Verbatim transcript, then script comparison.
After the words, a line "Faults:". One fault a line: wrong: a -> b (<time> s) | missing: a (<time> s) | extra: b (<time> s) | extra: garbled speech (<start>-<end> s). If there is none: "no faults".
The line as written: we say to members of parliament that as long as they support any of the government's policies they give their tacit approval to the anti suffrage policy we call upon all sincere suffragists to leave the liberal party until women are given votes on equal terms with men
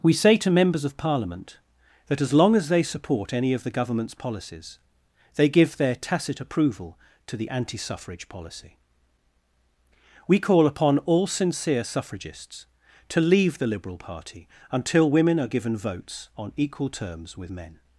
we say to members of parliament that as long as they support any of the government's policies they give their tacit approval to the anti suffrage policy we call upon all sincere suffragists to leave the liberal party until women are given votes on equal terms with men
Faults:
no faults